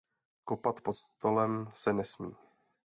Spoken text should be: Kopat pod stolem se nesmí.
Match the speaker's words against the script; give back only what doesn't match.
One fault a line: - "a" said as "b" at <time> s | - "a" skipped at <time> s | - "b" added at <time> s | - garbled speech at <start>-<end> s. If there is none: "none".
none